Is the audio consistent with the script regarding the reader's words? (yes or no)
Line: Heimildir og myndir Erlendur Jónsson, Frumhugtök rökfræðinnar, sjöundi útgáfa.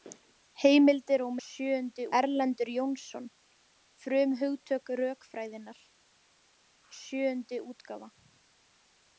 no